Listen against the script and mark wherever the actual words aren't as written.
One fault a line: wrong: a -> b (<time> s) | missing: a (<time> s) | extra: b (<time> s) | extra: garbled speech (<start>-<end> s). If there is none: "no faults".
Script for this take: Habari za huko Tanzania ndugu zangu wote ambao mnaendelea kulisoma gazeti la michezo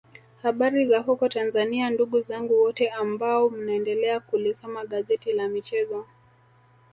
no faults